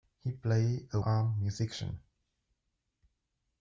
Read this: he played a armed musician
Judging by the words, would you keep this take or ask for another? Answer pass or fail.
pass